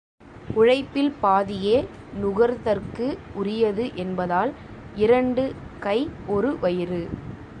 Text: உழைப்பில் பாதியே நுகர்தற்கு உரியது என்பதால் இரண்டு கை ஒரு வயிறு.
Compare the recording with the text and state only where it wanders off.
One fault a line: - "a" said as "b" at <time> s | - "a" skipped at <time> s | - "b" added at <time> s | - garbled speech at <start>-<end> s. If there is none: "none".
none